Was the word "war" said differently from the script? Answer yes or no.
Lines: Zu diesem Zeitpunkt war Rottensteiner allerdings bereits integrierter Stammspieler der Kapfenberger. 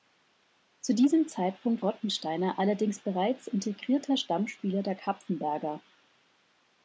yes